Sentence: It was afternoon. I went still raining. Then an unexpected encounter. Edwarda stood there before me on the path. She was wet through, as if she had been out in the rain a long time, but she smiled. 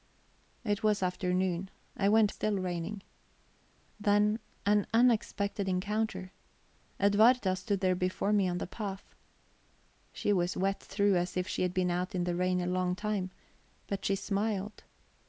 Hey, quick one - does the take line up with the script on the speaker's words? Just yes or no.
yes